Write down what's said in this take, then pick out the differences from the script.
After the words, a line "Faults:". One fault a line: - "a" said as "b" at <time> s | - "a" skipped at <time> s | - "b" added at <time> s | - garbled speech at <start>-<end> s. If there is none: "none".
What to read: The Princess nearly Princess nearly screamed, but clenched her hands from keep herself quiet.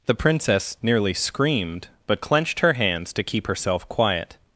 The Princess nearly screamed, but clenched her hands to keep herself quiet.
Faults:
- "Princess nearly" skipped at 1.1 s
- "from" said as "to" at 3.1 s